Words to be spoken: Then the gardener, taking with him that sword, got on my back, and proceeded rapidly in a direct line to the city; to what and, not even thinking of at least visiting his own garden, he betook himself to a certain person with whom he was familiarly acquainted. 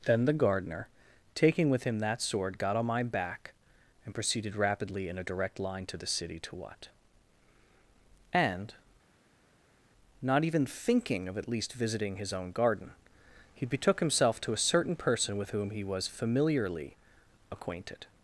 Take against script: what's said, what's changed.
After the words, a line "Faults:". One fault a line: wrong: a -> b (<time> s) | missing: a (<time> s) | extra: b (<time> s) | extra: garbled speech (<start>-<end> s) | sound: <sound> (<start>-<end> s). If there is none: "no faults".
Then the gardener, taking with him that sword, got on my back, and proceeded rapidly in a direct line to the city; to what and, not even thinking of at least visiting his own garden, he betook himself to a certain person with whom he was familiarly acquainted.
Faults:
no faults